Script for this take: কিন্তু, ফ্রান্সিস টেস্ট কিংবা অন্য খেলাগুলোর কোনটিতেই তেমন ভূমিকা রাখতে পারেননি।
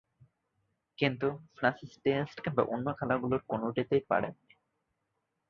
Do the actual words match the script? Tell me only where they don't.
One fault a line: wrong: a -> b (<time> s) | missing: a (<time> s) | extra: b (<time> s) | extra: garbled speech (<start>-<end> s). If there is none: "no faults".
missing: তেমন ভূমিকা রাখতে (4.0 s)